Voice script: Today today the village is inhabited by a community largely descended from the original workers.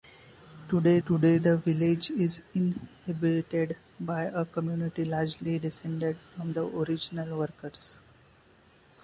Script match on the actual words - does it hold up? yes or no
yes